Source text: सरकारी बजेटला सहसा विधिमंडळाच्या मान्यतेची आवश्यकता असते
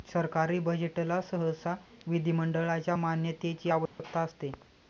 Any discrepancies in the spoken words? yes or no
no